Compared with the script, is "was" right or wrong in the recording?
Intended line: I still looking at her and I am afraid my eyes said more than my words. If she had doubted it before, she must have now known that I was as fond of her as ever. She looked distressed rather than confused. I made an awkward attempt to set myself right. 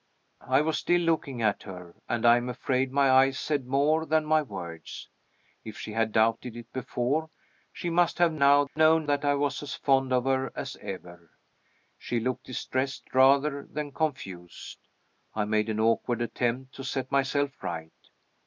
right